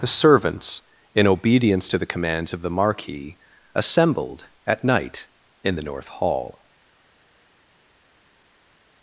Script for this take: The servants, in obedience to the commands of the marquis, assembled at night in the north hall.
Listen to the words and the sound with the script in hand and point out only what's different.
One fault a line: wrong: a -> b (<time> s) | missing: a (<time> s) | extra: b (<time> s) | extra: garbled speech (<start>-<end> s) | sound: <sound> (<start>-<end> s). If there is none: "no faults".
no faults